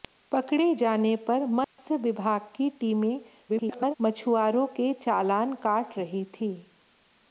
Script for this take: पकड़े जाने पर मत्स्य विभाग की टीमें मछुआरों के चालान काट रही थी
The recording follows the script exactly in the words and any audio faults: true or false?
false